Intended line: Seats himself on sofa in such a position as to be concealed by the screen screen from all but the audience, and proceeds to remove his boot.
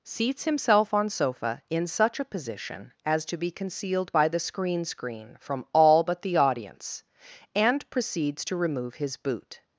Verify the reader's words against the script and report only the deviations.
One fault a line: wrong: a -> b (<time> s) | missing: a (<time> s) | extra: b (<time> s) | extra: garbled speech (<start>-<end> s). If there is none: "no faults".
no faults